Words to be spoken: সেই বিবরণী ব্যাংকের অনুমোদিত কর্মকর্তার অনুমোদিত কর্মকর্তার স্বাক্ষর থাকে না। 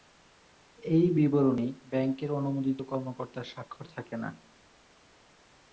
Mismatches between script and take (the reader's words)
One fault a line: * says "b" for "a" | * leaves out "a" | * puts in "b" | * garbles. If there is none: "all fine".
* says "এই" for "সেই"
* leaves out "অনুমোদিত কর্মকর্তার"